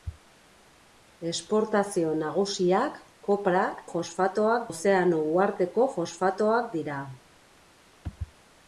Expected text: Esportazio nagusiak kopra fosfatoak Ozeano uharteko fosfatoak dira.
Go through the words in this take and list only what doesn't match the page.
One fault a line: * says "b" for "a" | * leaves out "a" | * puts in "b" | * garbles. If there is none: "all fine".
all fine